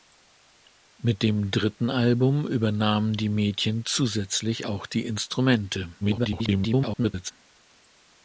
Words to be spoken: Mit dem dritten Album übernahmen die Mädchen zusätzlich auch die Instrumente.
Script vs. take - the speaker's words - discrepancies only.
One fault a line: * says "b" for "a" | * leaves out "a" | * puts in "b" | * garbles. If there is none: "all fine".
* garbles